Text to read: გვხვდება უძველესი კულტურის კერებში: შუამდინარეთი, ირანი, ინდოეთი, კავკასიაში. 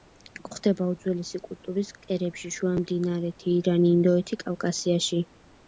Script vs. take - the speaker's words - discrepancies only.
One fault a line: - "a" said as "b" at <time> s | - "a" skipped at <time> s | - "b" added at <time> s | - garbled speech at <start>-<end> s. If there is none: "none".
none